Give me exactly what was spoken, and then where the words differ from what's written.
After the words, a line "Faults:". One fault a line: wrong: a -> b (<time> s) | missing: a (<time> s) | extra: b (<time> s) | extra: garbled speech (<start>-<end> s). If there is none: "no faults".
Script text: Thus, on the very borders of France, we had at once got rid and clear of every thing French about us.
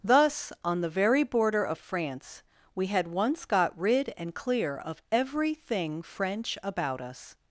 Thus, on the very border of France, we had once got rid and clear of every thing French about us.
Faults:
wrong: borders -> border (1.2 s)
missing: at (3.1 s)